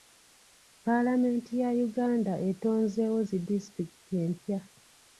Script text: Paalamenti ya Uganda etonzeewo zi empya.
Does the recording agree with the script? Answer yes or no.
no